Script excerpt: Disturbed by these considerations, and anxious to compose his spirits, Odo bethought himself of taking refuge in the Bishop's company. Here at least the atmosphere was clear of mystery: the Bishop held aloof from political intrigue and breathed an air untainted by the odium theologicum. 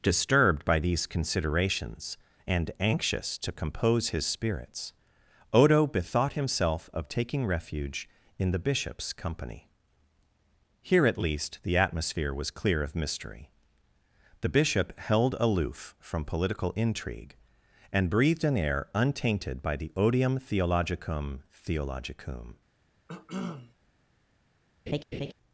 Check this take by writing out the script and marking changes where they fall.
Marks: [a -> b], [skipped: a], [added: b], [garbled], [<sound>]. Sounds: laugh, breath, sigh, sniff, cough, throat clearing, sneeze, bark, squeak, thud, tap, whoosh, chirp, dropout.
Disturbed by these considerations, and anxious to compose his spirits, Odo bethought himself of taking refuge in the Bishop's company. Here at least the atmosphere was clear of mystery: the Bishop held aloof from political intrigue and breathed an air untainted by the odium theologicum. [added: theologicum] [cough] [laugh]